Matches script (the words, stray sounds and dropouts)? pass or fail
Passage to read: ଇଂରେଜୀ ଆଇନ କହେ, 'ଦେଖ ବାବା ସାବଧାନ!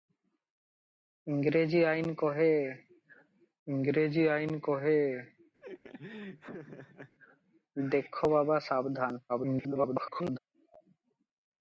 fail